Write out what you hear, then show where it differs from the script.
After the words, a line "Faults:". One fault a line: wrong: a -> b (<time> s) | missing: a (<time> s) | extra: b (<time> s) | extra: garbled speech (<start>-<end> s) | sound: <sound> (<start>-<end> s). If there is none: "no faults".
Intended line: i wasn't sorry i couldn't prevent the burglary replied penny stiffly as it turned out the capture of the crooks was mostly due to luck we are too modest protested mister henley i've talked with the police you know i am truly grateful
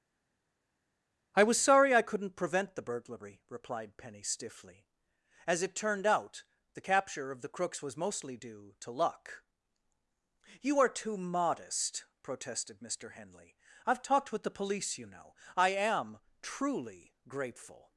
i was sorry i couldn't prevent the burglary replied penny stiffly as it turned out the capture of the crooks was mostly due to luck you are too modest protested mister henley i've talked with the police you know i am truly grateful
Faults:
wrong: wasn't -> was (1.4 s)
wrong: we -> you (10.6 s)